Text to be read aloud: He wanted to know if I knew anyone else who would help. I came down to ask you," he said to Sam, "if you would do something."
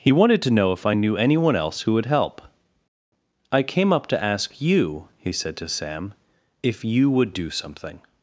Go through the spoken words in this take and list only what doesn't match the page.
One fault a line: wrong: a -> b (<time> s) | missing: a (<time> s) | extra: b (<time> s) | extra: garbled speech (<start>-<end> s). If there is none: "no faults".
wrong: down -> up (3.9 s)